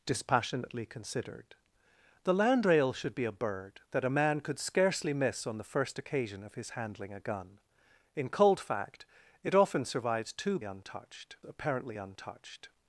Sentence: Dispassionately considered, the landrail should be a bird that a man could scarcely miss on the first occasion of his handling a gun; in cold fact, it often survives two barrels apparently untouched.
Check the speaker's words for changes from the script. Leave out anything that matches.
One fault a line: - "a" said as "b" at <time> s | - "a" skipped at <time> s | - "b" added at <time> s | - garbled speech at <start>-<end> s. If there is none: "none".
- "barrels" said as "untouched" at 10.6 s